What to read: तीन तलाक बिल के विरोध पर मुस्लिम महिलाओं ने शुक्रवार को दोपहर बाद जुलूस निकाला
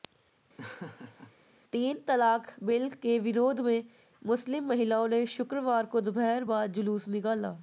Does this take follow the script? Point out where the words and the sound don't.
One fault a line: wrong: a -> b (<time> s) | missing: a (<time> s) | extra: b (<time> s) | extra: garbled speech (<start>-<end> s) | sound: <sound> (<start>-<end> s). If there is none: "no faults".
sound: laugh (0.6-1.3 s)
wrong: पर -> में (3.6 s)